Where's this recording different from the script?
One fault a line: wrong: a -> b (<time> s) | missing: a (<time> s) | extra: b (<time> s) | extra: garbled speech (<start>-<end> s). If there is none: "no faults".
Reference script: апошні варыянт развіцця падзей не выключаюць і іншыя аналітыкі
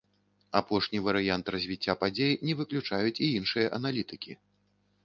no faults